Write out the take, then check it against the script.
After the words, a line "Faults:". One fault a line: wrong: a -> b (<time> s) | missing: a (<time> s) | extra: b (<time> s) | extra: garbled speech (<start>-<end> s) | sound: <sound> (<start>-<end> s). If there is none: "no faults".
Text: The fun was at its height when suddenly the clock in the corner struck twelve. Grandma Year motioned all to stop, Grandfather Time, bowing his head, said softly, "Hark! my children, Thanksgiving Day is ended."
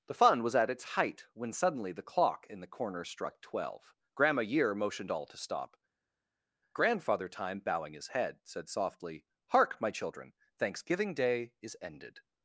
The fun was at its height when suddenly the clock in the corner struck twelve. Grandma Year motioned all to stop, Grandfather Time, bowing his head, said softly, "Hark! my children, Thanksgiving Day is ended."
Faults:
no faults